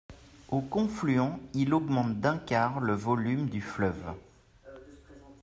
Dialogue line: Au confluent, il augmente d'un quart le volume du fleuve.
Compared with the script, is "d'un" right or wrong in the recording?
right